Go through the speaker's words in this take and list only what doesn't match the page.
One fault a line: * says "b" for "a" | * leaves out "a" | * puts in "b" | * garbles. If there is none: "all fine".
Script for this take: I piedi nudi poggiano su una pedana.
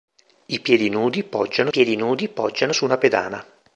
* puts in "piedi nudi poggiano"